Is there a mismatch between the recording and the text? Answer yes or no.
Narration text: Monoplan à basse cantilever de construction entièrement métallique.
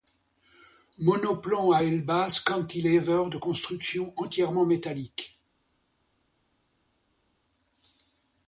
yes